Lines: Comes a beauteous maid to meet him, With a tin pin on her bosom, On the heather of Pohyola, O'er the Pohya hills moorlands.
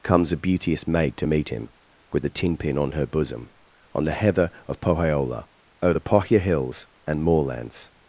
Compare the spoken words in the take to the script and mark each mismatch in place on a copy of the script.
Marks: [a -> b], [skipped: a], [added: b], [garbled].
Comes a beauteous maid to meet him, With a tin pin on her bosom, On the heather of Pohyola, O'er the Pohya hills [added: and] moorlands.